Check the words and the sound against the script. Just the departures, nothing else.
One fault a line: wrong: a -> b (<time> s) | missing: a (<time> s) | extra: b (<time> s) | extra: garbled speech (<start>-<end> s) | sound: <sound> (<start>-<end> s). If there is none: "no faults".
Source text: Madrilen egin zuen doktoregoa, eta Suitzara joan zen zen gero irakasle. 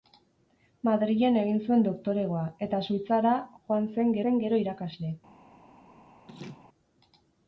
sound: laugh (6.3-6.7 s)